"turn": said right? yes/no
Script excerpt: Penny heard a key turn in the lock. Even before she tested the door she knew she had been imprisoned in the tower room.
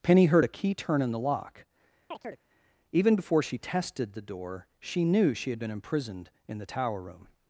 yes